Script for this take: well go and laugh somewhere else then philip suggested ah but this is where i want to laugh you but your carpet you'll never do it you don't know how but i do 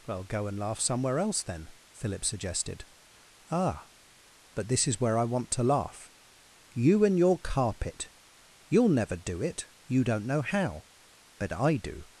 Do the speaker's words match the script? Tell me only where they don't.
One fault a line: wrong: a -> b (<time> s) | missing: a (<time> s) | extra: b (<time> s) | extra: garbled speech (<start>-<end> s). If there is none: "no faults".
wrong: but -> and (7.0 s)